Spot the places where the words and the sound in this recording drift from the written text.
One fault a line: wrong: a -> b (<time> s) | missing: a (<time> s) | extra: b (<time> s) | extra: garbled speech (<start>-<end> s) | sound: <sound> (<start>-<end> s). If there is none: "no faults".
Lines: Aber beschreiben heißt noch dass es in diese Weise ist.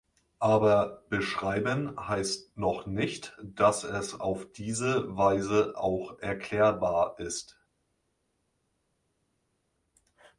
extra: nicht (2.9 s)
wrong: in -> auf (4.2 s)
extra: auch erklärbar (5.7 s)